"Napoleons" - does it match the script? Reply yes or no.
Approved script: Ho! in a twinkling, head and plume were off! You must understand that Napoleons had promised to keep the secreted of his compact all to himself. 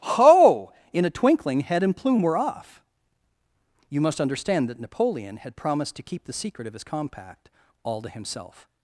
no